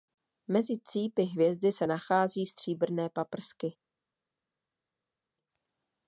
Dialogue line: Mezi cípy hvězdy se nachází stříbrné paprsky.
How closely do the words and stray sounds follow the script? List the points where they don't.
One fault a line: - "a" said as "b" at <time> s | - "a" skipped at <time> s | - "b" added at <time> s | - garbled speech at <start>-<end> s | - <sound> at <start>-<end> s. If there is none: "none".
none